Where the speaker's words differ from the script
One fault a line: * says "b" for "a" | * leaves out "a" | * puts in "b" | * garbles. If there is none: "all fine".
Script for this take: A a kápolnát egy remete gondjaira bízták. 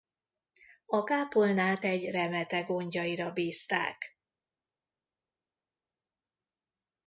* leaves out "a"